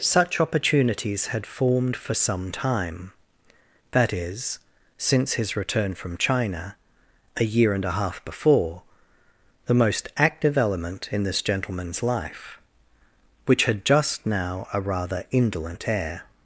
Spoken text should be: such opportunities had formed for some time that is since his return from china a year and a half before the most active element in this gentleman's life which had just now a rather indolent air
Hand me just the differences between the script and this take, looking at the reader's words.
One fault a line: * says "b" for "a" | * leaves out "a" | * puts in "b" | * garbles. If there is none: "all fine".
all fine